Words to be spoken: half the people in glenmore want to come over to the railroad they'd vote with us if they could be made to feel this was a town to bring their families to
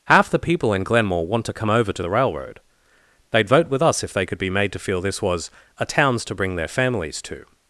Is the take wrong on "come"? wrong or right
right